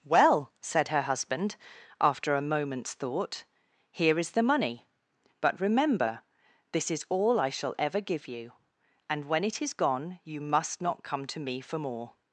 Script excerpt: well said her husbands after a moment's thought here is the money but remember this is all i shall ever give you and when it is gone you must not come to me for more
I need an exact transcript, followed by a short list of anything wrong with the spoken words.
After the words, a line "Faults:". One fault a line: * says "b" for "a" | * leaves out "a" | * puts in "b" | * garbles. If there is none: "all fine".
well said her husband after a moment's thought here is the money but remember this is all i shall ever give you and when it is gone you must not come to me for more
Faults:
* says "husband" for "husbands"